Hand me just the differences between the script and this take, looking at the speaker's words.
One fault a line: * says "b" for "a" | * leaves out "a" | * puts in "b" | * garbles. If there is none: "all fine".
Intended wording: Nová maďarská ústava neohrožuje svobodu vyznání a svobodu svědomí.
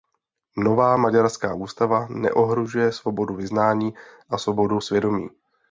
all fine